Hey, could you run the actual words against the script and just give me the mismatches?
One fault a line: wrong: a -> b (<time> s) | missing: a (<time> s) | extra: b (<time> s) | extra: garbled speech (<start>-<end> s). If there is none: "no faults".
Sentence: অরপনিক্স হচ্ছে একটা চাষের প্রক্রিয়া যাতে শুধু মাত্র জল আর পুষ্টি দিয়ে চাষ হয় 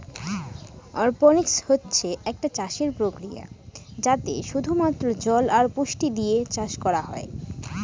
extra: করা (6.8 s)